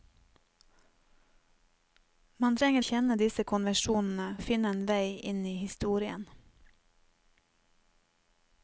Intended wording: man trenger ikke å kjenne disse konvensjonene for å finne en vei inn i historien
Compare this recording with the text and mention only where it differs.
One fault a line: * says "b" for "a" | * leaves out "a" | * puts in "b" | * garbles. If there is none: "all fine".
* leaves out "ikke"
* leaves out "for"